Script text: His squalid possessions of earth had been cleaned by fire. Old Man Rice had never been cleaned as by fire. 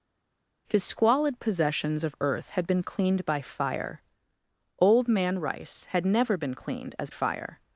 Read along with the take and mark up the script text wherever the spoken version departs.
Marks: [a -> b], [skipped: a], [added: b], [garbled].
His squalid possessions of earth had been cleaned by fire. Old Man Rice had never been cleaned as [skipped: by] fire.